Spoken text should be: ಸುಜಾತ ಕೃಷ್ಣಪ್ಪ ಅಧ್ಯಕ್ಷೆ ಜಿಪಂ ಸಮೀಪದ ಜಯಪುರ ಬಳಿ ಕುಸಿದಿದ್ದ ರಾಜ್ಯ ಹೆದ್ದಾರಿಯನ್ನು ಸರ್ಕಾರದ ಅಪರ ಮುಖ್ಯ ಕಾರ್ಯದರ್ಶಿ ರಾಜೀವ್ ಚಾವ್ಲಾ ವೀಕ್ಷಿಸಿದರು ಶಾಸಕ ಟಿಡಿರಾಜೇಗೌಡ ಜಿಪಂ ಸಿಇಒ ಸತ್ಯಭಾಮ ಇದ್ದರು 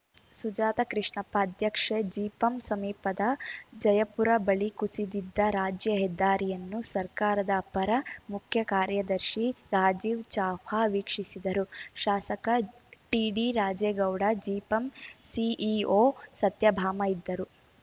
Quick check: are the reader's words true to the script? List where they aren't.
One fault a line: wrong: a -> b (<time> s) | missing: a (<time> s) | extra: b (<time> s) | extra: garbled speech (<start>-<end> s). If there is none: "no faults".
no faults